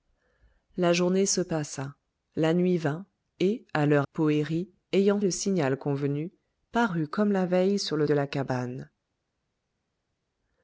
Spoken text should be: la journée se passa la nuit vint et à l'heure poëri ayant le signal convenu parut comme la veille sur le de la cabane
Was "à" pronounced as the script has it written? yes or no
yes